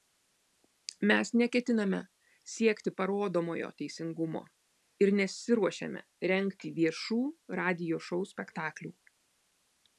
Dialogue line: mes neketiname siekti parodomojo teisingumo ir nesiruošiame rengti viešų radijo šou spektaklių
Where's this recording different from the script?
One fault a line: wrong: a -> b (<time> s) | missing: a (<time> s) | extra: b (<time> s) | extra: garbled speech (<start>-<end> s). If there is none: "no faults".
no faults